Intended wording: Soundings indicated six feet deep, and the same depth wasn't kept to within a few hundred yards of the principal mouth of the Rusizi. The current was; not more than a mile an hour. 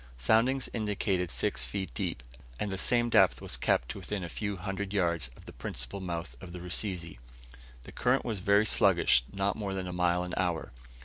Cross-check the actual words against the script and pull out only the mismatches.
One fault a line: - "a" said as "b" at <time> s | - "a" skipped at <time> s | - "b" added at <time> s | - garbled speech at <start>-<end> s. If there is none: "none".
- "wasn't" said as "was" at 3.4 s
- "very sluggish" added at 8.4 s